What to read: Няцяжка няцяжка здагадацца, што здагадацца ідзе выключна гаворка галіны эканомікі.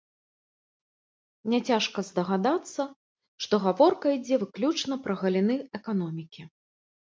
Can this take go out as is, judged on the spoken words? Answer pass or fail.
fail